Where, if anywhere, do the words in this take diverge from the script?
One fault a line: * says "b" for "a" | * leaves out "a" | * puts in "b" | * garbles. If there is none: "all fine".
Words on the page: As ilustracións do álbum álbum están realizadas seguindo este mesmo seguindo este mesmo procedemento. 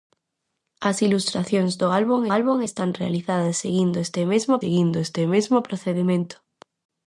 all fine